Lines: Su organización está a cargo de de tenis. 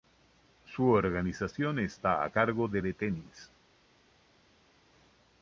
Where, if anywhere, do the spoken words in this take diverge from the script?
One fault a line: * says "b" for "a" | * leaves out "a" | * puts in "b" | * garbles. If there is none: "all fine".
all fine